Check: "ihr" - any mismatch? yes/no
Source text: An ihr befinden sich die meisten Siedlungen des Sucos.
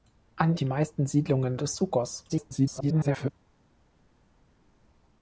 yes